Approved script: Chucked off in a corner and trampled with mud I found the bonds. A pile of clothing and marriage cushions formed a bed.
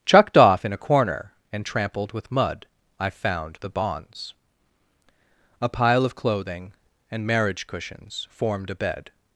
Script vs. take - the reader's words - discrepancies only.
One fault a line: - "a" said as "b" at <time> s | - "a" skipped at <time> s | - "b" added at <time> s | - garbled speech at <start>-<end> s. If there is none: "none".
none